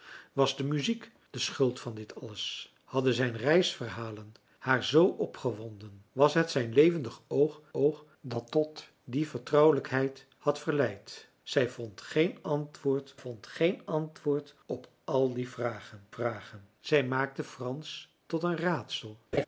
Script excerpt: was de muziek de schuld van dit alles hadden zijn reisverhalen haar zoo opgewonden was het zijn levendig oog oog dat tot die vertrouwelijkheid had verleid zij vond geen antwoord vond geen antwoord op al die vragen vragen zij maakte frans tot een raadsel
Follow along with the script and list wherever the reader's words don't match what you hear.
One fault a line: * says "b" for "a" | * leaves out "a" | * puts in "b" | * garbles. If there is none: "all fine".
all fine